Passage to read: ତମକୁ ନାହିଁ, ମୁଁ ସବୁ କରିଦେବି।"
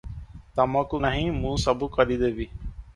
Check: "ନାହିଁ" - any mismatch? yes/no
no